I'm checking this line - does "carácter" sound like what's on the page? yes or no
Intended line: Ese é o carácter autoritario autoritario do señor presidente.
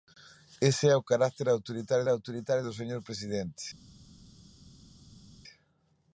yes